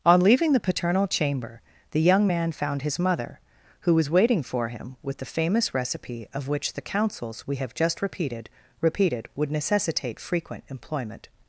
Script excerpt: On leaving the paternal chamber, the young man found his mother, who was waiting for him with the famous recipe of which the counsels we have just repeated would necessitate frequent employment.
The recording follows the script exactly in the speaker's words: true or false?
false